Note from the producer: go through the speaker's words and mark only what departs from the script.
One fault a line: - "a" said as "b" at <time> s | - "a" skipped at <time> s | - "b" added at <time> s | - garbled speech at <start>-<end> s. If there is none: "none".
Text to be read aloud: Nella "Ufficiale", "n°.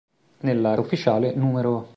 none